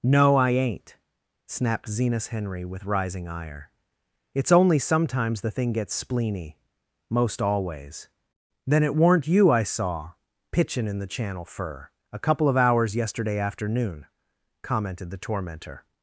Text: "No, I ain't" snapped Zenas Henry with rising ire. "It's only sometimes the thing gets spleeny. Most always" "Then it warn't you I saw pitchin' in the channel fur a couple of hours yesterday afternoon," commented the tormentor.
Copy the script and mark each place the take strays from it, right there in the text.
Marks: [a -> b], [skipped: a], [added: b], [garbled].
"No, I ain't" snapped Zenas Henry with rising ire. "It's only sometimes the thing gets spleeny. Most always" "Then it warn't you I saw pitchin' in the channel fur a couple of hours yesterday afternoon," commented the tormentor.